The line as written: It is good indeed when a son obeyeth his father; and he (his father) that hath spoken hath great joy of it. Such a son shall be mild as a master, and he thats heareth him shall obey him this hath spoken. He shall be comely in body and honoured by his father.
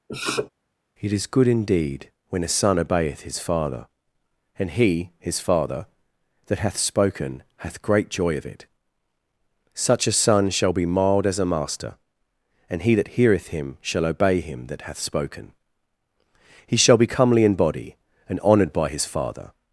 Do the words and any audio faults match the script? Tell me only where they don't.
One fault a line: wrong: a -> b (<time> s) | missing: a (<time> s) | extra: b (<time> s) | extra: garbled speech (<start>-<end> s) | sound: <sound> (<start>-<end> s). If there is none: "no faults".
sound: sniff (0.1-0.5 s)
wrong: thats -> that (12.9 s)
wrong: this -> that (14.7 s)